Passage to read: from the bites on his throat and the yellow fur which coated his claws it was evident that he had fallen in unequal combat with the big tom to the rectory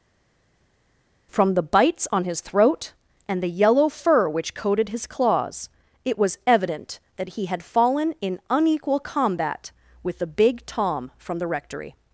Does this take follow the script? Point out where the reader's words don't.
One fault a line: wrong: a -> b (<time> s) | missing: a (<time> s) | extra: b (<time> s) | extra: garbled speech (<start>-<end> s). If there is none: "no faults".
wrong: to -> from (11.2 s)